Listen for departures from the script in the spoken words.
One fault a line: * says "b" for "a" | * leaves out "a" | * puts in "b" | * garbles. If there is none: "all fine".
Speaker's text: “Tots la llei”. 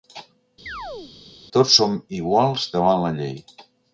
* puts in "som iguals davant"